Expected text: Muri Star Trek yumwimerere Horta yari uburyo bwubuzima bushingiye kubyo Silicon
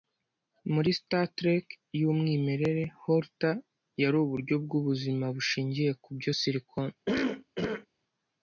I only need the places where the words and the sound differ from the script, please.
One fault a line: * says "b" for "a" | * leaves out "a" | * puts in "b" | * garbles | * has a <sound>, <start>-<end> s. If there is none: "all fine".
* has a cough, 7.1-7.9 s